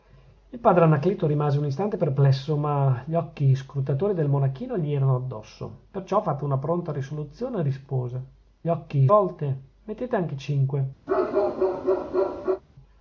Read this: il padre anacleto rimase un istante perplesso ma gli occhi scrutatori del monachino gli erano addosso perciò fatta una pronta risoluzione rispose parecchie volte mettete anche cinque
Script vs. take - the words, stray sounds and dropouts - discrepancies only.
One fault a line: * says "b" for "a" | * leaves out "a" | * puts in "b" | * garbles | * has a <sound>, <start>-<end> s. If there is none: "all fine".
* says "occhi" for "parecchie"
* has a bark, 11.1-12.6 s